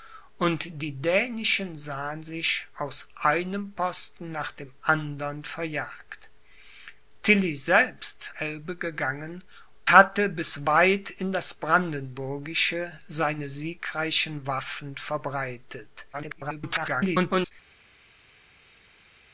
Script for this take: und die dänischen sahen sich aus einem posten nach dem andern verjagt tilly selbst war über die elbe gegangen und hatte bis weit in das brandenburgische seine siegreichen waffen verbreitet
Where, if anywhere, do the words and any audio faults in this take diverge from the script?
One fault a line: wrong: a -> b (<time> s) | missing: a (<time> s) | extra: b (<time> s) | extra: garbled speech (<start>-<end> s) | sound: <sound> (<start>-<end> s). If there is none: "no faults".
missing: war über die (8.3 s)
missing: und (9.4 s)
extra: garbled speech (16.1-17.5 s)